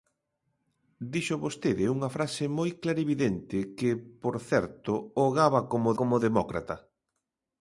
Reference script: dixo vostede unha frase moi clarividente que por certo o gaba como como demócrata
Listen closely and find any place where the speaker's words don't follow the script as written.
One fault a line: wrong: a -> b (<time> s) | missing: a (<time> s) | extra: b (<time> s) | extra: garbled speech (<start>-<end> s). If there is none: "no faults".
no faults